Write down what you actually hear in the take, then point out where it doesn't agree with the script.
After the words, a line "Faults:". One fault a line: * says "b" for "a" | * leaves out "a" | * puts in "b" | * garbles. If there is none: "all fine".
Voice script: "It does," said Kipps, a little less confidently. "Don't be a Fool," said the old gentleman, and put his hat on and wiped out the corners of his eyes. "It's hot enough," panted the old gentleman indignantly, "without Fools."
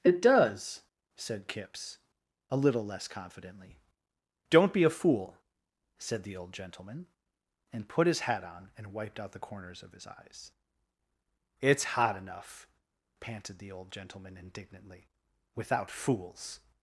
"It does," said Kipps, a little less confidently. "Don't be a Fool," said the old gentleman, and put his hat on and wiped out the corners of his eyes. "It's hot enough," panted the old gentleman indignantly, "without Fools."
Faults:
all fine